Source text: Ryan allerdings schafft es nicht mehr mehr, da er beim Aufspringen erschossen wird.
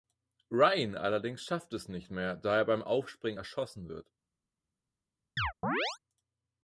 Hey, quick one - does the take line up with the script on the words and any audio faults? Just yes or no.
no